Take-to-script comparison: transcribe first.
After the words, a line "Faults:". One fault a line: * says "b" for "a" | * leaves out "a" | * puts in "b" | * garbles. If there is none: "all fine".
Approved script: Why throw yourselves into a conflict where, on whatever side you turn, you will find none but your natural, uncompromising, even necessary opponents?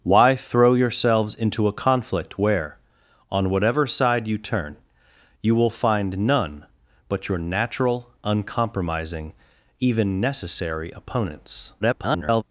Why throw yourselves into a conflict where, on whatever side you turn, you will find none but your natural, uncompromising, even necessary opponents? [garbled]
Faults:
* garbles